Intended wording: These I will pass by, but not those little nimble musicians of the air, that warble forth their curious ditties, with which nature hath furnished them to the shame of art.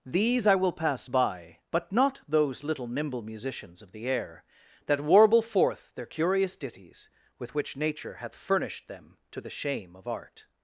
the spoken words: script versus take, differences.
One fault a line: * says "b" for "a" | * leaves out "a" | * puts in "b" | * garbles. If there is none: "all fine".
all fine